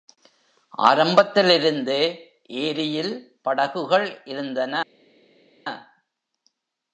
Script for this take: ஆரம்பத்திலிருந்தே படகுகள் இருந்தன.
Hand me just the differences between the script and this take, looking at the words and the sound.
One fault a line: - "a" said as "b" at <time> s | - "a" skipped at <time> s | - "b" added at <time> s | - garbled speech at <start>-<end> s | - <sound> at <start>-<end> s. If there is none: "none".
- "ஏரியில்" added at 2.6 s